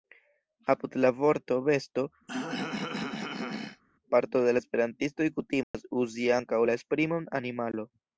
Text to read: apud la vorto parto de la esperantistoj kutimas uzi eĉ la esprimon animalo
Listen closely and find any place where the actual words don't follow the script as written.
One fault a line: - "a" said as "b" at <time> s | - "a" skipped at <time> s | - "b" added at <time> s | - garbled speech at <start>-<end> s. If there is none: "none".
- "besto" added at 1.7 s
- "eĉ" said as "ankaŭ" at 6.4 s